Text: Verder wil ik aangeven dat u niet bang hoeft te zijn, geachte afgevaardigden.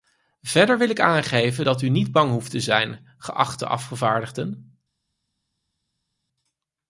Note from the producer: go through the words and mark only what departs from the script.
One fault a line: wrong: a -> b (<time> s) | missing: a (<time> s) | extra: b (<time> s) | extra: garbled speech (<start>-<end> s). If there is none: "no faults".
no faults